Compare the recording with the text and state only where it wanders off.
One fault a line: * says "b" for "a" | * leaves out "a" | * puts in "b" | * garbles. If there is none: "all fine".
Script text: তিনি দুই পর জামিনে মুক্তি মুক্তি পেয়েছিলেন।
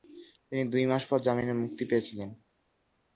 * puts in "মাস"
* leaves out "মুক্তি"